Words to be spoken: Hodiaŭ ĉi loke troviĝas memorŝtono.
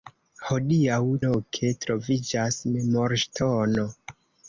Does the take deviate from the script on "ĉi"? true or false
true